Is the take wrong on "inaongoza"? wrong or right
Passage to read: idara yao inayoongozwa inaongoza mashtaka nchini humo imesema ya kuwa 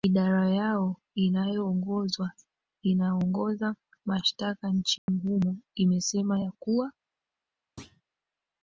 right